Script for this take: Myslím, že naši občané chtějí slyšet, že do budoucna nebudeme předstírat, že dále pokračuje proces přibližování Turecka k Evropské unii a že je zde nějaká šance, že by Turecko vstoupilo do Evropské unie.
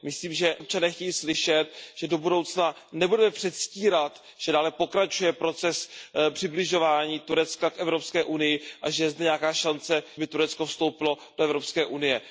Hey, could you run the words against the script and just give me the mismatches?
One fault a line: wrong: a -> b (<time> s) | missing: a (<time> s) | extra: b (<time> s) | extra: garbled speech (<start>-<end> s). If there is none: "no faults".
missing: naši (0.6 s)
missing: že (10.0 s)